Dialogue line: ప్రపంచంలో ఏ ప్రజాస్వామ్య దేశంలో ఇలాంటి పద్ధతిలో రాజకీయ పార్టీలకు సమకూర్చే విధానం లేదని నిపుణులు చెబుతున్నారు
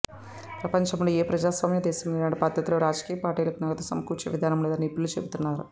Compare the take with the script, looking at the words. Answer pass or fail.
fail